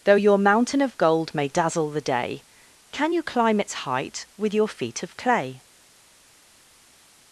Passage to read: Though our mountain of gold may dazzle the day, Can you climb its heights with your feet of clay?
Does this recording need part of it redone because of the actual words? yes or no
yes